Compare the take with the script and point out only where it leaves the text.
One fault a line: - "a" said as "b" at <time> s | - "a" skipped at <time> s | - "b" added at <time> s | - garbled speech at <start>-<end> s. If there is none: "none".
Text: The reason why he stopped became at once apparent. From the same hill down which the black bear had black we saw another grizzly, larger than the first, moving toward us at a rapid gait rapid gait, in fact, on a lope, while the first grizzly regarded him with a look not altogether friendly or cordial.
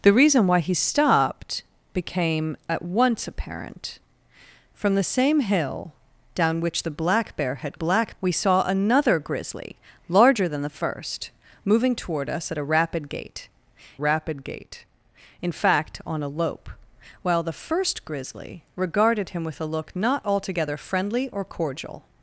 none